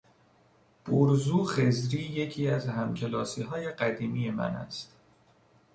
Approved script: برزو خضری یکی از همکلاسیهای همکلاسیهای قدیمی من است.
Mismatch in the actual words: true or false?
true